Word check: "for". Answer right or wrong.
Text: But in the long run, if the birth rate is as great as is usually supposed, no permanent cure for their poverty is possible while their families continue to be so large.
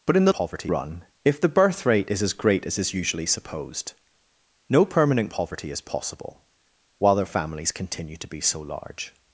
wrong